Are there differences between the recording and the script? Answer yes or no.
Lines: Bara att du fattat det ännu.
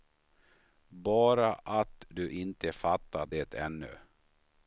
yes